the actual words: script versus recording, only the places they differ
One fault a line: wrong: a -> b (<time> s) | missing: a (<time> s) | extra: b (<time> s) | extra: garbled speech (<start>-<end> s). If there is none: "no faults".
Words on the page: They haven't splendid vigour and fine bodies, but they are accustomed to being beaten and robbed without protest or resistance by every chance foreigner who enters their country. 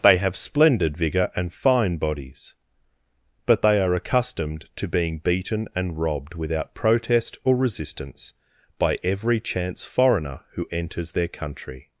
wrong: haven't -> have (0.2 s)